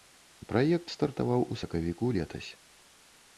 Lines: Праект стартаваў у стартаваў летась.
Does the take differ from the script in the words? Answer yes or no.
yes